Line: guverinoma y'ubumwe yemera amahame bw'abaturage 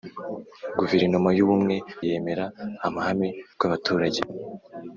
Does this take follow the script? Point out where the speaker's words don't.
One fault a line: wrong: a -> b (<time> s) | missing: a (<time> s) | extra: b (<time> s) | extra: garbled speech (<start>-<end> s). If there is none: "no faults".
no faults